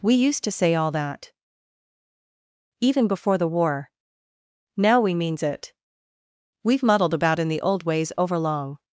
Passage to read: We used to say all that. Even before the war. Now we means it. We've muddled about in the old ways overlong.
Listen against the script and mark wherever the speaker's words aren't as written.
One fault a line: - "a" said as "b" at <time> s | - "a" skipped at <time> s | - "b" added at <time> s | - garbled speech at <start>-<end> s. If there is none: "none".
none